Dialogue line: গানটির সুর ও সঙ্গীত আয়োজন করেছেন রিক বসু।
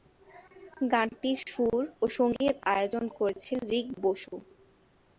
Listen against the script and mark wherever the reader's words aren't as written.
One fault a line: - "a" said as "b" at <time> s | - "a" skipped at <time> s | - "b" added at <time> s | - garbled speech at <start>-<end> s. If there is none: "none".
none